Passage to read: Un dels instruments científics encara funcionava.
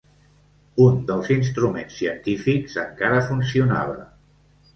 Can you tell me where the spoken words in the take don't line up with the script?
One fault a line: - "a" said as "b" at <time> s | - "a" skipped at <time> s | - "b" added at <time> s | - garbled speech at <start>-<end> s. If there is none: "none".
none